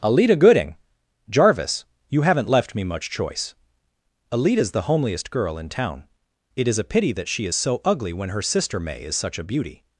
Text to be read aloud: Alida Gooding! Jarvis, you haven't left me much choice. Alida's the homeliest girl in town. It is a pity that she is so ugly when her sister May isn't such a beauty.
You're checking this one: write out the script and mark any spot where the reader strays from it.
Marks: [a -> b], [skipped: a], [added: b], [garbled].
Alida Gooding! Jarvis, you haven't left me much choice. Alida's the homeliest girl in town. It is a pity that she is so ugly when her sister May [isn't -> is] such a beauty.